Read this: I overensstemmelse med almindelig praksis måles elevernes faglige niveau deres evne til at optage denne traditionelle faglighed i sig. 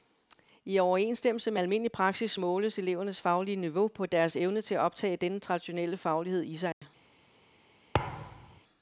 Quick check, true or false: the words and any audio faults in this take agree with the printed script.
false